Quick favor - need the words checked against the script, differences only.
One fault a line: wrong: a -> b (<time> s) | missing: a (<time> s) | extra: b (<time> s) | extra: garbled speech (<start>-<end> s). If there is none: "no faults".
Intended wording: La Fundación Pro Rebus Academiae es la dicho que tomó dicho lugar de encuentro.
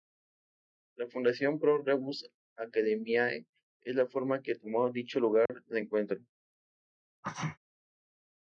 wrong: dicho -> forma (4.1 s)